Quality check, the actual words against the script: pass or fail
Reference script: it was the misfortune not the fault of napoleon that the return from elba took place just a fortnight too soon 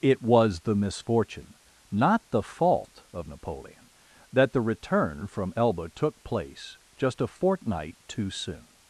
pass